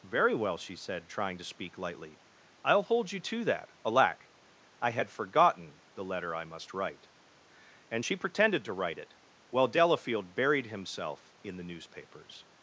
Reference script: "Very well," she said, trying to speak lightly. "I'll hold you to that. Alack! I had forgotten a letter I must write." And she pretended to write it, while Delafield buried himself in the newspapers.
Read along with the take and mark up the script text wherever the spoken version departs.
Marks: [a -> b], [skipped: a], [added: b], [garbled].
"Very well," she said, trying to speak lightly. "I'll hold you to that. Alack! I had forgotten [a -> the] letter I must write." And she pretended to write it, while Delafield buried himself in the newspapers.